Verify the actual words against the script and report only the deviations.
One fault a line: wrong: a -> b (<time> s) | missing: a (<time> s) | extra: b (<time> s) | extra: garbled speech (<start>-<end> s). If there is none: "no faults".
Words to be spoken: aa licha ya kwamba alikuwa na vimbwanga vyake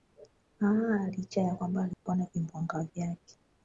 no faults